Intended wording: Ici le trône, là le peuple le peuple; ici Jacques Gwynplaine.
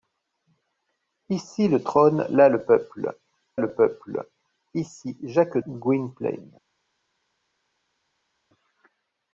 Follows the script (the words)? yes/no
yes